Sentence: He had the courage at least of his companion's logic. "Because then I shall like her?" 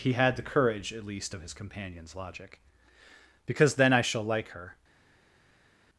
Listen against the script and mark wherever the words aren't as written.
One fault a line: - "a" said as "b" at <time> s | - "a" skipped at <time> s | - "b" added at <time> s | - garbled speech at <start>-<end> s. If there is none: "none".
none